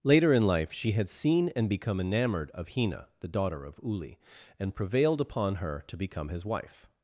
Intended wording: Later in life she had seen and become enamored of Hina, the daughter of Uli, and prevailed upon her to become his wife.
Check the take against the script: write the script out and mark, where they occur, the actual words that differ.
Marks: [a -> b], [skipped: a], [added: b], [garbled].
Later in life she had seen and become enamored of Hina, the daughter of Uli, and prevailed upon her to become his wife.